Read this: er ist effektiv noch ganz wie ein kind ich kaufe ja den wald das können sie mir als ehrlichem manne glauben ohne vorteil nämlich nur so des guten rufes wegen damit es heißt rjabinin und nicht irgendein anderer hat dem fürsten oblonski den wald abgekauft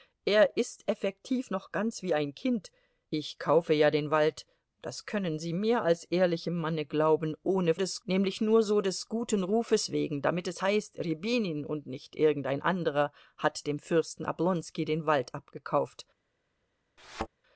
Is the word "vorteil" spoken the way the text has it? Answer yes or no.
no